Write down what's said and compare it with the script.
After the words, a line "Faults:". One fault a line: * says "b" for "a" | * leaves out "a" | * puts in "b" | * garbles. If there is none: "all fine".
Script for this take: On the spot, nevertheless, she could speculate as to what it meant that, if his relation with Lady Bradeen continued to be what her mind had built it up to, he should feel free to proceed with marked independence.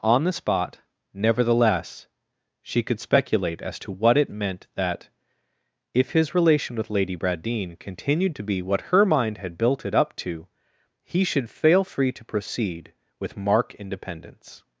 On the spot, nevertheless, she could speculate as to what it meant that, if his relation with Lady Bradeen continued to be what her mind had built it up to, he should fail free to proceed with mark independence.
Faults:
* says "fail" for "feel"
* says "mark" for "marked"